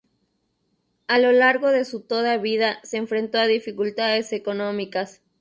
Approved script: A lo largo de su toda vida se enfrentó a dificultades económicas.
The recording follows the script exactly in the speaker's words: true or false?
true